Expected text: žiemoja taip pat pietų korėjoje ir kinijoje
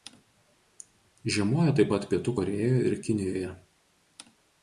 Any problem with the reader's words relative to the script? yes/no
no